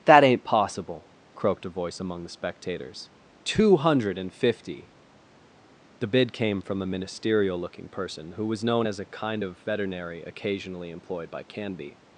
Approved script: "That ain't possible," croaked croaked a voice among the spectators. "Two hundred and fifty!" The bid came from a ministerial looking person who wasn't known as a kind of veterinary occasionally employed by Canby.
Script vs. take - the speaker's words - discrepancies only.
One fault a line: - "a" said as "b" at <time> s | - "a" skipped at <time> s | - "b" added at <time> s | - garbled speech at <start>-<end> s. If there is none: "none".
- "croaked" skipped at 1.6 s
- "wasn't" said as "was" at 8.4 s